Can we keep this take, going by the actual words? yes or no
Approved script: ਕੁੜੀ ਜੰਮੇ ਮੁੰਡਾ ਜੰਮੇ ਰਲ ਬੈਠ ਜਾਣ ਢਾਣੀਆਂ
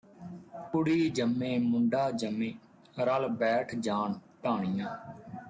yes